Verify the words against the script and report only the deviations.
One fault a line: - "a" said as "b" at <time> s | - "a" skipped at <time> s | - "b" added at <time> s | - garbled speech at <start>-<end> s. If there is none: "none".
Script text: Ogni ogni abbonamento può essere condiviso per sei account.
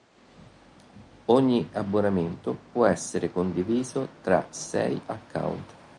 - "ogni" skipped at 1.7 s
- "per" said as "tra" at 4.2 s